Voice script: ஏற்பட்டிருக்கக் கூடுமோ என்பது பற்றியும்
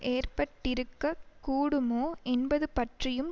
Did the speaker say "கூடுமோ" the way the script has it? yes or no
yes